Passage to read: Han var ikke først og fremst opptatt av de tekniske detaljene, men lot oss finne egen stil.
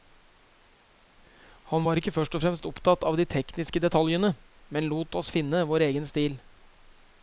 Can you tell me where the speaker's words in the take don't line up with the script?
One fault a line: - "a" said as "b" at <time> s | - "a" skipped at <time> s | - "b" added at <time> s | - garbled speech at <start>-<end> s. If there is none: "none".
- "vår" added at 5.7 s